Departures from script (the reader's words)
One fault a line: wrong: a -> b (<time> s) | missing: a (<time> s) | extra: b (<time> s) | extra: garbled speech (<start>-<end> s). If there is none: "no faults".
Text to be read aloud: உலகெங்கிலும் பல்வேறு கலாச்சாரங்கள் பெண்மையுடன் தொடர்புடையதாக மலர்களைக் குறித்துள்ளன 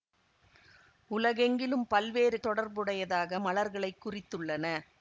missing: கலாச்சாரங்கள் பெண்மையுடன் (2.4 s)